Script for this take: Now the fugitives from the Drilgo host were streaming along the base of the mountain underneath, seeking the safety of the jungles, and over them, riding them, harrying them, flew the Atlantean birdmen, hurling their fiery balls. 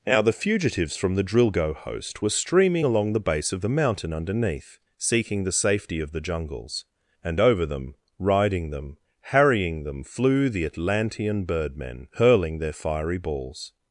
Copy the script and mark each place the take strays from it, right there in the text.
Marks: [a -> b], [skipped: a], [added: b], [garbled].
Now the fugitives from the Drilgo host were streaming along the base of the mountain underneath, seeking the safety of the jungles, and over them, riding them, harrying them, flew the Atlantean birdmen, hurling their fiery balls.